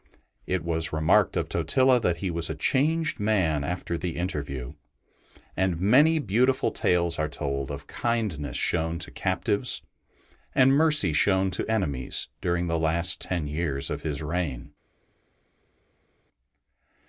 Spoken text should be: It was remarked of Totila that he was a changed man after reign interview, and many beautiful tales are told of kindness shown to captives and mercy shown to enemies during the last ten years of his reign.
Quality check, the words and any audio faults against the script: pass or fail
fail